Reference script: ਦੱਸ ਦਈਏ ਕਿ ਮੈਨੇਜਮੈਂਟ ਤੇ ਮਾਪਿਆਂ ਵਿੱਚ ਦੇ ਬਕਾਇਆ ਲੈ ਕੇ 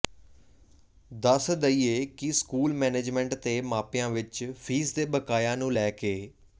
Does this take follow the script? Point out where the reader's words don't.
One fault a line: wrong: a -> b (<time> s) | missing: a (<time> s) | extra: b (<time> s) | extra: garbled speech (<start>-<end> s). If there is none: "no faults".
extra: ਸਕੂਲ (2.3 s)
extra: ਫੀਸ (4.6 s)
extra: ਨੂੰ (5.5 s)